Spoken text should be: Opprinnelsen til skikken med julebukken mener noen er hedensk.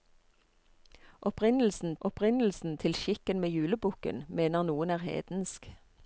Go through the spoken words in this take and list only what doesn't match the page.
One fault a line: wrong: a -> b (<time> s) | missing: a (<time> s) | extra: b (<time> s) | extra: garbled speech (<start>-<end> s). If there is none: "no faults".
extra: opprinnelsen (2.0 s)